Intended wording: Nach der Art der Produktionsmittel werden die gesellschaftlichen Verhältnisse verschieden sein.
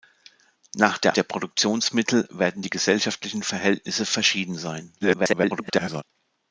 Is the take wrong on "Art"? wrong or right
wrong